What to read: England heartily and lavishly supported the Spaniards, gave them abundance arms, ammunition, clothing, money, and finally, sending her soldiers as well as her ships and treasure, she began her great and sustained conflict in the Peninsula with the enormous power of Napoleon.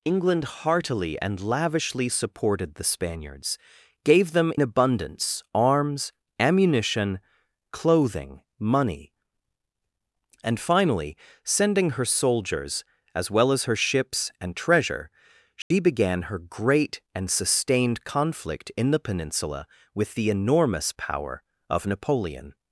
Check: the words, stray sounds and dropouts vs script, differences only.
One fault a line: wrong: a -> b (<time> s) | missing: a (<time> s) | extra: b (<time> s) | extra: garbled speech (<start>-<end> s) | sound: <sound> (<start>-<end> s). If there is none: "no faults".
sound: dropout (15.6-15.7 s)